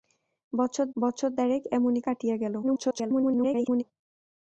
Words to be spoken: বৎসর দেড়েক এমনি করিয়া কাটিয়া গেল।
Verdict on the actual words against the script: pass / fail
fail